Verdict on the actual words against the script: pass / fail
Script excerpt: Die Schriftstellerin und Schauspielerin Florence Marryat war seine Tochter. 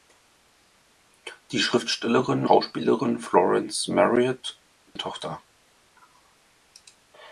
fail